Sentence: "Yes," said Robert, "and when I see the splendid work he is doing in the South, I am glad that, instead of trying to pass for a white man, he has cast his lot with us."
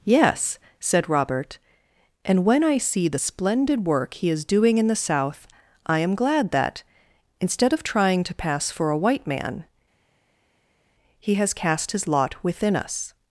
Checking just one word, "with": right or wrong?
wrong